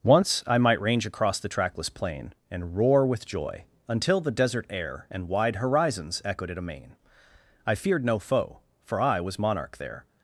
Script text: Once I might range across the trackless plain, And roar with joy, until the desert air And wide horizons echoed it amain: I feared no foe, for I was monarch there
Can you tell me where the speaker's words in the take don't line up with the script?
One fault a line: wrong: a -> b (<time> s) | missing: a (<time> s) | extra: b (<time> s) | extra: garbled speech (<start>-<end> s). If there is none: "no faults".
no faults